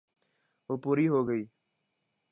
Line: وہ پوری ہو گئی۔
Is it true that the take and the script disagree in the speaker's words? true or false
false